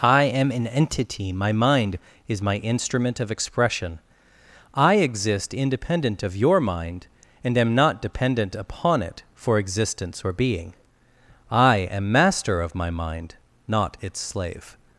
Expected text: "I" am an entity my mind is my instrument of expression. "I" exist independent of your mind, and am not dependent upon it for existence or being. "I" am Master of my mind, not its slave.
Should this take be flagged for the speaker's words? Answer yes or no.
no